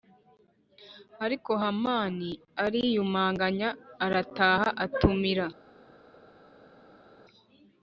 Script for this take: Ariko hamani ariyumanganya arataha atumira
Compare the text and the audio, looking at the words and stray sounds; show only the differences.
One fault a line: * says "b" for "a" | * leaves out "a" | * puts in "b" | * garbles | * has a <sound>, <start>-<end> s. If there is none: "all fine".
all fine